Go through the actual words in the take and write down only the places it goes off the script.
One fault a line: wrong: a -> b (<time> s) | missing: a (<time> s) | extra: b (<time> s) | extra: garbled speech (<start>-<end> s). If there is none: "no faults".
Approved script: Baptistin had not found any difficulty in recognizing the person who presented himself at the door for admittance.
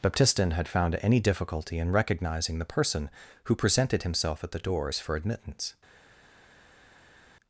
missing: not (0.7 s)
wrong: door -> doors (4.6 s)